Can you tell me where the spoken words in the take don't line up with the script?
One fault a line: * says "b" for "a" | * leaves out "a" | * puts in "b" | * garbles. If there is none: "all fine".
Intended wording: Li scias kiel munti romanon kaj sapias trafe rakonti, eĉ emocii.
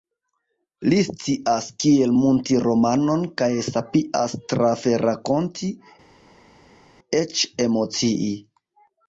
all fine